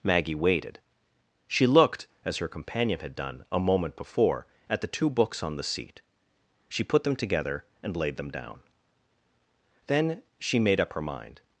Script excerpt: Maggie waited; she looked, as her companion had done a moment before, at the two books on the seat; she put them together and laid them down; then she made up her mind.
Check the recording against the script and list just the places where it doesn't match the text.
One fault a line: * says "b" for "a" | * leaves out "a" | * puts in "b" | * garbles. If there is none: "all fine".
all fine